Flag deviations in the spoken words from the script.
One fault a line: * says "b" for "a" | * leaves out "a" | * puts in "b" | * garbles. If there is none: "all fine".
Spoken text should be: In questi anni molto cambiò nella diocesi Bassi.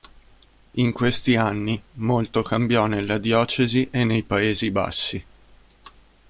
* puts in "e nei Paesi"